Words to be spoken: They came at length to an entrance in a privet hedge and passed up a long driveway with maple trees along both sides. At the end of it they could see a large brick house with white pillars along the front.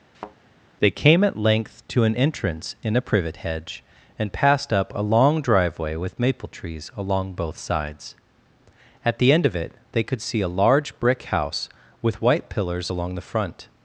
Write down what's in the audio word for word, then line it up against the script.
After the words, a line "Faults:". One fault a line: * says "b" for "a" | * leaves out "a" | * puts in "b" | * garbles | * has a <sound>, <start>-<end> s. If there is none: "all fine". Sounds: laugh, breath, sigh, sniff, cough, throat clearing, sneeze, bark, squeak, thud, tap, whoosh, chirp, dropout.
They came at length to an entrance in a privet hedge and passed up a long driveway with maple trees along both sides. At the end of it they could see a large brick house with white pillars along the front.
Faults:
* has a thud, 0.1-0.4 s